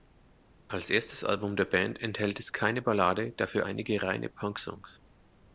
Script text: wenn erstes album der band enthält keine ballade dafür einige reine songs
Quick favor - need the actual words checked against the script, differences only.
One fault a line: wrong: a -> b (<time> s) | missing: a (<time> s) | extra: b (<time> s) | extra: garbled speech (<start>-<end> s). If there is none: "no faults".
wrong: wenn -> als (0.7 s)
extra: es (2.4 s)
extra: punk (4.3 s)